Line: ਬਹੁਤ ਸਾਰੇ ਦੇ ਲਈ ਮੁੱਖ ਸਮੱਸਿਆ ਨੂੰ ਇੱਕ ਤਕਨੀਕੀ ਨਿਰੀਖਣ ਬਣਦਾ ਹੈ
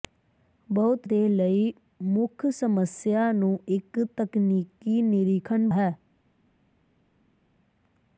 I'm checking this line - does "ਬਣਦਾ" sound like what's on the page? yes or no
no